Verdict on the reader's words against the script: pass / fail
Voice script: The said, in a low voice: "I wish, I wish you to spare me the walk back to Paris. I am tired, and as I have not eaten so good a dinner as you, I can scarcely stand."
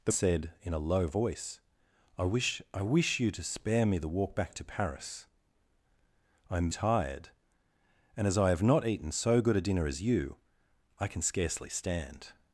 pass